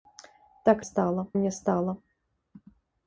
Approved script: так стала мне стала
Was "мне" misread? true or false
false